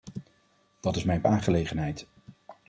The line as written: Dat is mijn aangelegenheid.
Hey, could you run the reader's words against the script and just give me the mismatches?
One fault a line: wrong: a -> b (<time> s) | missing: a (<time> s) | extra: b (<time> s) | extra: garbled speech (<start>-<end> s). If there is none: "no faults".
no faults